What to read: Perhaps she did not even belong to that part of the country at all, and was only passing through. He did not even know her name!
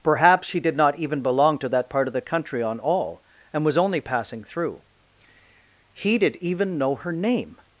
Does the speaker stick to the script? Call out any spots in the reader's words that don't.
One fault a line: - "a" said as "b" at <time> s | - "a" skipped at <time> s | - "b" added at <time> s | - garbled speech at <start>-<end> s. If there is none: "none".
- "at" said as "on" at 2.6 s
- "not" skipped at 6.4 s